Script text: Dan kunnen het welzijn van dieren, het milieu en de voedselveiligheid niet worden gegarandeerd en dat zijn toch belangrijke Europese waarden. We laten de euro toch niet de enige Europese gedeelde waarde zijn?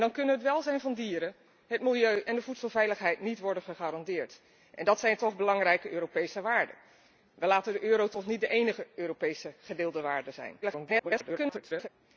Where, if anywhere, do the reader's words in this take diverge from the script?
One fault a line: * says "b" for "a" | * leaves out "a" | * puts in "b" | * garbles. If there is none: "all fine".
* garbles